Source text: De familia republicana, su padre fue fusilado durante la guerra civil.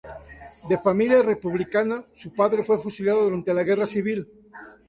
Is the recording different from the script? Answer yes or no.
no